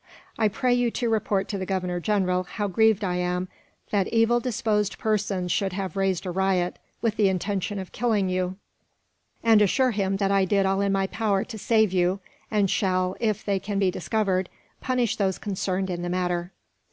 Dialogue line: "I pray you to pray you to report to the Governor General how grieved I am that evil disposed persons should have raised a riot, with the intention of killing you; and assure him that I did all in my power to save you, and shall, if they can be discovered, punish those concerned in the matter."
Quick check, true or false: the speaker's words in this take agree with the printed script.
false